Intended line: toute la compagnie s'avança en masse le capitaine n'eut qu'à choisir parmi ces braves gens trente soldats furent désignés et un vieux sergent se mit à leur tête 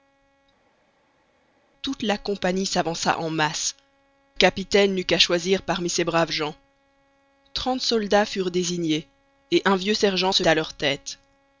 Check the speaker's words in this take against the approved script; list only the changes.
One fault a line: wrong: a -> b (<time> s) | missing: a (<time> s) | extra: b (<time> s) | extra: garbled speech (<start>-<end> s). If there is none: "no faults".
missing: le (3.8 s)
missing: mit (10.4 s)